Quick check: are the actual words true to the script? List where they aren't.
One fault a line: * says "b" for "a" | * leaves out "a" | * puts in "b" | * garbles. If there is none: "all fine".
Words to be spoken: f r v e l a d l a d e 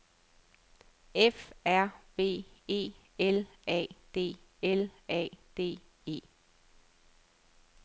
all fine